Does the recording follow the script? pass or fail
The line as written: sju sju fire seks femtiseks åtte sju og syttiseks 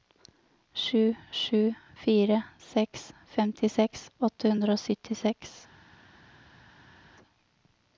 fail